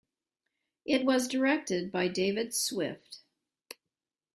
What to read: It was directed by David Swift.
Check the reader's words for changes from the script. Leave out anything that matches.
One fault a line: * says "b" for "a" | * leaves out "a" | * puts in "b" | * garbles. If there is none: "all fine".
all fine